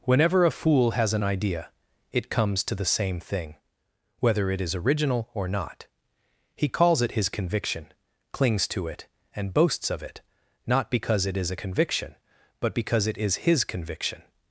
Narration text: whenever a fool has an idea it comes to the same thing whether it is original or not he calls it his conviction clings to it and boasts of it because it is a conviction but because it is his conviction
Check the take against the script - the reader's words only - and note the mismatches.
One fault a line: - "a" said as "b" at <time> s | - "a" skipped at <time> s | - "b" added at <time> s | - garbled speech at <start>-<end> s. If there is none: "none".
- "not" added at 10.7 s